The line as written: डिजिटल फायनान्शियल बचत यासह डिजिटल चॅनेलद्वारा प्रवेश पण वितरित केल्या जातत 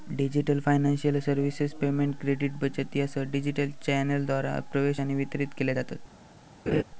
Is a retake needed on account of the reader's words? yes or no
yes